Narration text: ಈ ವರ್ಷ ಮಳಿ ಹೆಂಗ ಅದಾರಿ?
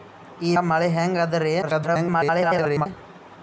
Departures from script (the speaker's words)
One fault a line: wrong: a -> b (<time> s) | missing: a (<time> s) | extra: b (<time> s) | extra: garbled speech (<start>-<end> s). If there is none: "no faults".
missing: ವರ್ಷ (0.5 s)
extra: garbled speech (1.6-2.9 s)